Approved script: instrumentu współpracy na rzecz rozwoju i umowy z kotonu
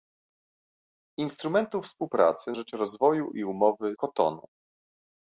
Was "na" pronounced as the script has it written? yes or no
no